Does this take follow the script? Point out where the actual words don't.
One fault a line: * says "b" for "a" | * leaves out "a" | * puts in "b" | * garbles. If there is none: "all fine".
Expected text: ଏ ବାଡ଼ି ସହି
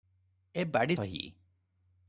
all fine